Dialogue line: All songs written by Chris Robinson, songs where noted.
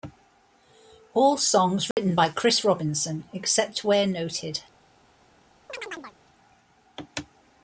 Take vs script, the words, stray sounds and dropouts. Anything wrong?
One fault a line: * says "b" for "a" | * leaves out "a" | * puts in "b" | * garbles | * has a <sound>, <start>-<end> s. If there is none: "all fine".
* has a dropout, 1.9-2.0 s
* says "except" for "songs"
* has a chirp, 5.7-6.2 s